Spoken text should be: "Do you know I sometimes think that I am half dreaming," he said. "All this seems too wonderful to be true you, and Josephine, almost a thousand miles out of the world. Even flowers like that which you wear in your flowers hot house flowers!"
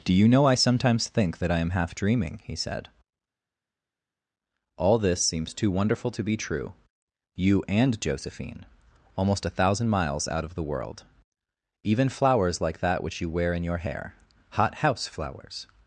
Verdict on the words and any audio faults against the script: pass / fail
fail